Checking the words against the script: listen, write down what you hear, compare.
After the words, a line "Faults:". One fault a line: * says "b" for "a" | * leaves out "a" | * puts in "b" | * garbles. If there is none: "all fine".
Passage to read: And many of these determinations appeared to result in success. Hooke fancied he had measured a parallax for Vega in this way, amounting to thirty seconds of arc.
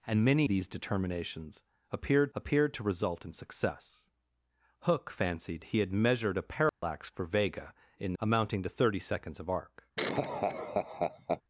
And many these determinations appeared appeared to result in success. Hooke fancied he had measured a parallax for Vega in amounting to thirty seconds of arc.
Faults:
* leaves out "of"
* puts in "appeared"
* leaves out "this way"